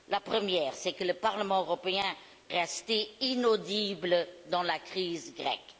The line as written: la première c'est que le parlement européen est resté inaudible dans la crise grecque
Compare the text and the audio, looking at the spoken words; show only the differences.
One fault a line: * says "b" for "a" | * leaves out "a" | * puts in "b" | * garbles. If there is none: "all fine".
* leaves out "est"